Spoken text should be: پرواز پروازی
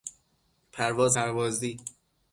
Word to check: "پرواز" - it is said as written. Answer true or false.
true